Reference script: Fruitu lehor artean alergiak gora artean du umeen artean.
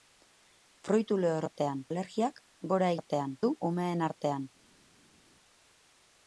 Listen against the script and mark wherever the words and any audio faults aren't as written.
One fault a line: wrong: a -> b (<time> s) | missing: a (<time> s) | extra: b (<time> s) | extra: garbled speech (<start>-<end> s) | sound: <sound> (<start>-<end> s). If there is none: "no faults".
no faults